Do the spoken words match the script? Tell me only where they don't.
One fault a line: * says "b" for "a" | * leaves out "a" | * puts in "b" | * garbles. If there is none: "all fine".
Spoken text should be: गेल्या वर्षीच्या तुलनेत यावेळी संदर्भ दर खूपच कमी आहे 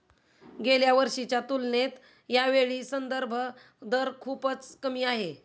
all fine